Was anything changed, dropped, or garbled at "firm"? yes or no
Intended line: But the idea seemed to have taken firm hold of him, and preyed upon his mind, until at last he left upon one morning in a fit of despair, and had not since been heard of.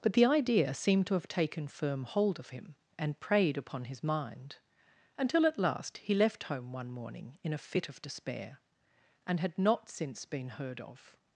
no